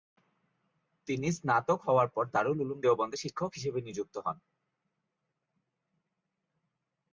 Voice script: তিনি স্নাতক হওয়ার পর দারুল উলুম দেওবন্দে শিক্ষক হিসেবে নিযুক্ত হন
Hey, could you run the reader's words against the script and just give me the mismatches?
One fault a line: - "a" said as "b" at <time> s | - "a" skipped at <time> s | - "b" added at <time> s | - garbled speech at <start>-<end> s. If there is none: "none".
none